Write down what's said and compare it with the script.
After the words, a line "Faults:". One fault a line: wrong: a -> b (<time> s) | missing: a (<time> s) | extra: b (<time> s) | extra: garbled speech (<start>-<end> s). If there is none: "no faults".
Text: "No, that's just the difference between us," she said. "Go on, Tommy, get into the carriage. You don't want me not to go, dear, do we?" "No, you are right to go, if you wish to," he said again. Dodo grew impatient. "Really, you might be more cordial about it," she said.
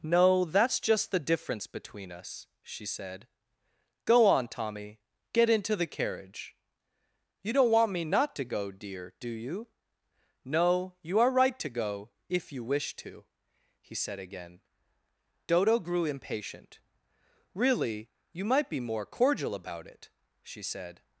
"No, that's just the difference between us," she said. "Go on, Tommy, get into the carriage. You don't want me not to go, dear, do you?" "No, you are right to go, if you wish to," he said again. Dodo grew impatient. "Really, you might be more cordial about it," she said.
Faults:
wrong: we -> you (9.3 s)